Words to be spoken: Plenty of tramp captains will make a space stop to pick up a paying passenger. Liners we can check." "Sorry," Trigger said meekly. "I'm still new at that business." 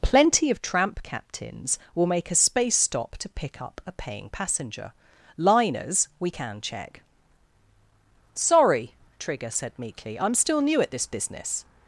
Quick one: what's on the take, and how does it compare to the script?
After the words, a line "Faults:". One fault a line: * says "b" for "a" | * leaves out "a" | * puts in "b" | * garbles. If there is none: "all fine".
Plenty of tramp captains will make a space stop to pick up a paying passenger. Liners we can check." "Sorry," Trigger said meekly. "I'm still new at this business."
Faults:
* says "this" for "that"